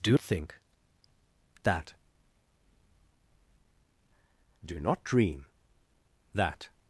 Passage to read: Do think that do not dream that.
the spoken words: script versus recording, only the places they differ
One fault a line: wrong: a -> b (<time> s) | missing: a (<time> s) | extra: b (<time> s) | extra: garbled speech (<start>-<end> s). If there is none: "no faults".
no faults